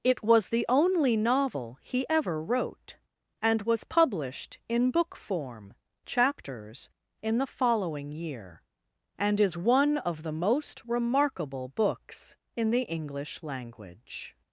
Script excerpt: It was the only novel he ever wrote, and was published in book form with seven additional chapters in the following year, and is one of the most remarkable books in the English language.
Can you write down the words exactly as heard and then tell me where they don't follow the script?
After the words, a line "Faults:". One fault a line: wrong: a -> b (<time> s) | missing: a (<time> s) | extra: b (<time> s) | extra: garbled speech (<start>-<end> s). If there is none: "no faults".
It was the only novel he ever wrote, and was published in book form chapters in the following year, and is one of the most remarkable books in the English language.
Faults:
missing: with seven additional (5.8 s)